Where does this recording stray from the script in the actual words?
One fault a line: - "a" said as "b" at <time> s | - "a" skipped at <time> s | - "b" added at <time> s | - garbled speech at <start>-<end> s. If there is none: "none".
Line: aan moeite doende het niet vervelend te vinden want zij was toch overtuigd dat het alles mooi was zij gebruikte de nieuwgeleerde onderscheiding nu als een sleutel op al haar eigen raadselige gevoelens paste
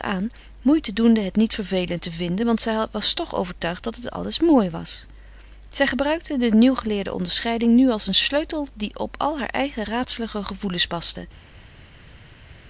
- "die" added at 8.7 s